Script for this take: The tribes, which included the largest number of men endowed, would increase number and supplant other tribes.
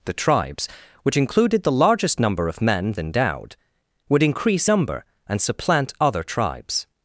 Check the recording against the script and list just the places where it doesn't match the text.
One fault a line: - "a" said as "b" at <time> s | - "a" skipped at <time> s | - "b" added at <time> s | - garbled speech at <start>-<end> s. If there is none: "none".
none